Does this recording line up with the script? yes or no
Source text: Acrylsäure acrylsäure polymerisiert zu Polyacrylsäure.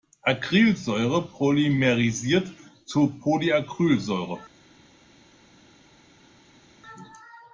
no